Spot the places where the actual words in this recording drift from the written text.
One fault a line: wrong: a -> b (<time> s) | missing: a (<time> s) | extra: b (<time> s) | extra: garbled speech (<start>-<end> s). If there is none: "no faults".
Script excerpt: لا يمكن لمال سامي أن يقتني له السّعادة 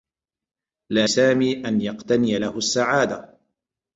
missing: يمكن لمال (1.1 s)